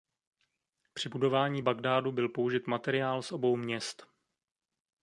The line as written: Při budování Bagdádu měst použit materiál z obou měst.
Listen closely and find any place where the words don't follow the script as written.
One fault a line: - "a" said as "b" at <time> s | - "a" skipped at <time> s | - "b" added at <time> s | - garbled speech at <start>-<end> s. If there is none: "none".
- "měst" said as "byl" at 2.1 s